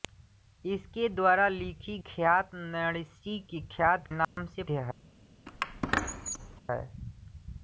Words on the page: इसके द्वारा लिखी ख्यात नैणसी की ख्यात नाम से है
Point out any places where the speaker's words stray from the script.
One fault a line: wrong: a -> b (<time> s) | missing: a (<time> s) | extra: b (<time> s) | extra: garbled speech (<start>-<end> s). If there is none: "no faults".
no faults